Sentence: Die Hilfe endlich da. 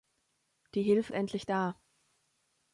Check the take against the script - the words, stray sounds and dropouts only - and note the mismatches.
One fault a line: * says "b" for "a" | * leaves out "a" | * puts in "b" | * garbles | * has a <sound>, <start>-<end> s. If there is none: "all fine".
all fine